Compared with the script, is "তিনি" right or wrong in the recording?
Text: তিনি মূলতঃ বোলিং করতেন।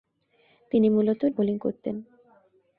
right